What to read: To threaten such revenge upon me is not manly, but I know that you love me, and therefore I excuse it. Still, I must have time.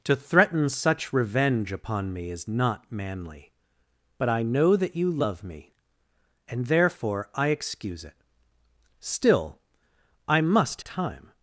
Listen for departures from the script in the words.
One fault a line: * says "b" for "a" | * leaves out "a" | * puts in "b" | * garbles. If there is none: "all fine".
* leaves out "have"